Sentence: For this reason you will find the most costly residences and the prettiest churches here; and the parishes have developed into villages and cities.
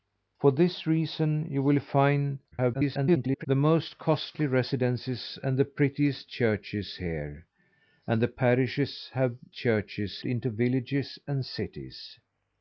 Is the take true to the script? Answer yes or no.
no